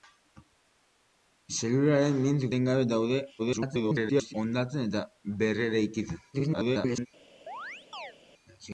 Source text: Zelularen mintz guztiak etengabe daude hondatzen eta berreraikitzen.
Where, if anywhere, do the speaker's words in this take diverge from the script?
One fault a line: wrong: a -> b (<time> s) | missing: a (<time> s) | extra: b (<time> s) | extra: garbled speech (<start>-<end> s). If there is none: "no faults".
missing: guztiak (2.5 s)
extra: garbled speech (3.4-4.3 s)
extra: garbled speech (6.3-7.1 s)